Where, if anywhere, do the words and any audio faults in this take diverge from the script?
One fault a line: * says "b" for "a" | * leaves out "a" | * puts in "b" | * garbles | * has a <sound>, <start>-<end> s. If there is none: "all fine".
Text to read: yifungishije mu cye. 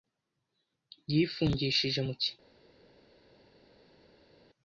all fine